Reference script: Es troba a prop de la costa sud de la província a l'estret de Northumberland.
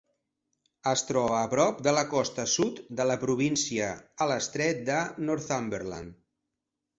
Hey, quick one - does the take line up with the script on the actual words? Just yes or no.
yes